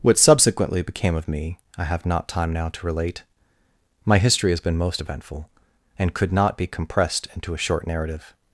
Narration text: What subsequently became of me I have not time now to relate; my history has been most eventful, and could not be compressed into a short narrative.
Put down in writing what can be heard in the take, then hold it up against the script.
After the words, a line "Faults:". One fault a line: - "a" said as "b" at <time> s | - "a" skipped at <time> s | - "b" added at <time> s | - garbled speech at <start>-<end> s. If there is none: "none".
What subsequently became of me I have not time now to relate; my history has been most eventful, and could not be compressed into a short narrative.
Faults:
none